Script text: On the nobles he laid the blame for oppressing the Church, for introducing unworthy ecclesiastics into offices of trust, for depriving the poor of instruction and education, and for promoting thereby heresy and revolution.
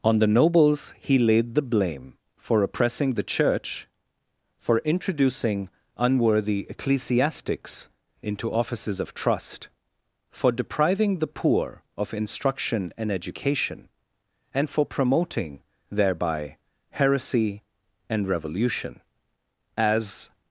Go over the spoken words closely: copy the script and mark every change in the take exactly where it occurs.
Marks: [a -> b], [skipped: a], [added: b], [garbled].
On the nobles he laid the blame for oppressing the Church, for introducing unworthy ecclesiastics into offices of trust, for depriving the poor of instruction and education, and for promoting thereby heresy and revolution. [added: As]